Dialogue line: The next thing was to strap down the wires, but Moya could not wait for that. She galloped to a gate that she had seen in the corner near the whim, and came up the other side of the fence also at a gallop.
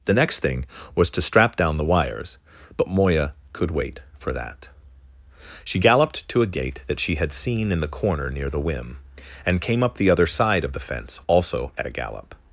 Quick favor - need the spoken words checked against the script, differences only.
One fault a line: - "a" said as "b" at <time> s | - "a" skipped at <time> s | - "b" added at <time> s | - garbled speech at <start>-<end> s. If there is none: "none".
- "not" skipped at 3.7 s